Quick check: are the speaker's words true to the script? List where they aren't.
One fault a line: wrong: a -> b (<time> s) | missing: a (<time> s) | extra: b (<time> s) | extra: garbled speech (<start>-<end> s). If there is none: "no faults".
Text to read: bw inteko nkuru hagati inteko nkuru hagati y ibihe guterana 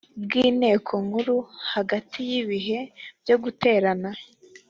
missing: inteko nkuru hagati (2.2 s)
extra: byo (3.2 s)